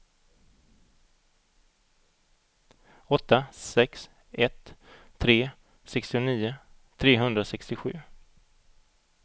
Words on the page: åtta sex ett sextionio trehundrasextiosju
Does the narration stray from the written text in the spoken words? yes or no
yes